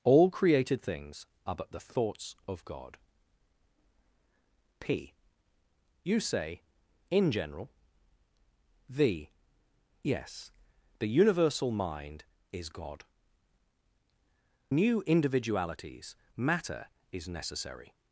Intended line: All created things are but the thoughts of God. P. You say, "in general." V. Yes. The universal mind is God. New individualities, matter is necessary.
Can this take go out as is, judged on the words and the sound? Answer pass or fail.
pass